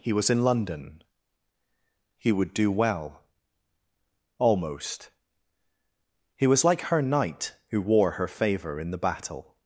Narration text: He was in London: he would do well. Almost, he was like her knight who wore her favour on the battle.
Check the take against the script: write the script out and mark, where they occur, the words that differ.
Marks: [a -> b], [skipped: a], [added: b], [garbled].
He was in London: he would do well. Almost, he was like her knight who wore her favour [on -> in] the battle.